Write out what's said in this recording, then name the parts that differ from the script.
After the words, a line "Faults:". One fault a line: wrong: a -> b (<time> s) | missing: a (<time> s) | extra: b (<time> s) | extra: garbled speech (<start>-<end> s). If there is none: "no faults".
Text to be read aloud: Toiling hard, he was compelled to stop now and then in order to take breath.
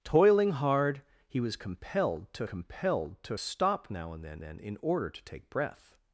Toiling hard, he was compelled to compelled to stop now and then then in order to take breath.
Faults:
extra: compelled to (2.4 s)
extra: then (4.4 s)